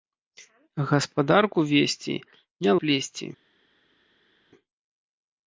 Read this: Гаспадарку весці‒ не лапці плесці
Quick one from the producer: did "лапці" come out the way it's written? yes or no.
no